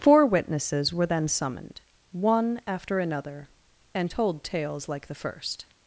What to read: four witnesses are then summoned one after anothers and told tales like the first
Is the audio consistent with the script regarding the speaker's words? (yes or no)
no